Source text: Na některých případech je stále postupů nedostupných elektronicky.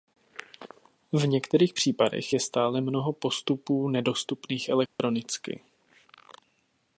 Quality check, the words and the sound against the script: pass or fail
fail